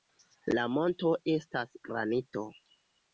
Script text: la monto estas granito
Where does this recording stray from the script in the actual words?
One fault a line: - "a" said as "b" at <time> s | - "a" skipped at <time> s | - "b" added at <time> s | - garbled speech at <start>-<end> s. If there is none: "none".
none